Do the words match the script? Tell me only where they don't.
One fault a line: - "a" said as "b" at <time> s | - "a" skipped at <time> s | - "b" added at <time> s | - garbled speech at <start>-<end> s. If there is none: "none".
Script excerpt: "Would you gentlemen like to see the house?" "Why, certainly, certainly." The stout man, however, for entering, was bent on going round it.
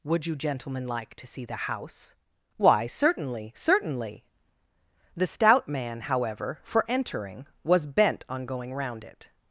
none